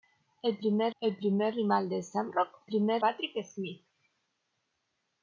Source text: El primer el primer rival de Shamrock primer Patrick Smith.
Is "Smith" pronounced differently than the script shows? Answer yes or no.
no